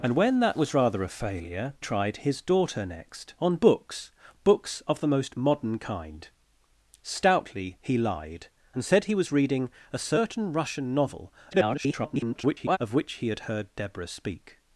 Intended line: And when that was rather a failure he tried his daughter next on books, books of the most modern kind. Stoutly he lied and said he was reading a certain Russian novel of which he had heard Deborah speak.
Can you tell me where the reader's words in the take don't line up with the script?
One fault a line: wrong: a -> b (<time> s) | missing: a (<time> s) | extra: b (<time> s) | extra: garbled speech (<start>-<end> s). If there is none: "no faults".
missing: he (1.8 s)
extra: garbled speech (11.5-12.8 s)